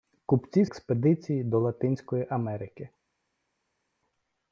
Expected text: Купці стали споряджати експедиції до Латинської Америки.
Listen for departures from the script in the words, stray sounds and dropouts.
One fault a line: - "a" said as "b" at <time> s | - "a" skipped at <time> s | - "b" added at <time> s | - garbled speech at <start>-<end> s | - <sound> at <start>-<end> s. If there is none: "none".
- "стали споряджати" skipped at 0.7 s